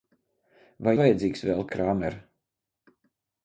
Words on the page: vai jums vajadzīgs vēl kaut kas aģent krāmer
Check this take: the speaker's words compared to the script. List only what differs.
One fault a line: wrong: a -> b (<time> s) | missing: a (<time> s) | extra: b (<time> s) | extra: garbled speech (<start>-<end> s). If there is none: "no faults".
missing: jums (0.9 s)
missing: kaut kas aģent (1.6 s)